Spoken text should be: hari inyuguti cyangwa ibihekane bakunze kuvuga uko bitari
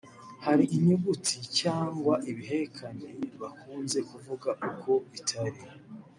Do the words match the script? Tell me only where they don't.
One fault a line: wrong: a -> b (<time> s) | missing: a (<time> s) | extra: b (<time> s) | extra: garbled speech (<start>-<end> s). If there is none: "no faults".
no faults